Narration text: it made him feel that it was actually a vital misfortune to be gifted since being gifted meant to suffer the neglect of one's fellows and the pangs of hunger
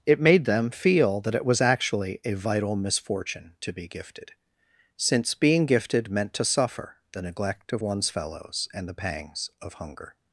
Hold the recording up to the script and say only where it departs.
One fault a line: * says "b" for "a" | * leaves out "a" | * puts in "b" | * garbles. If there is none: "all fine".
* says "them" for "him"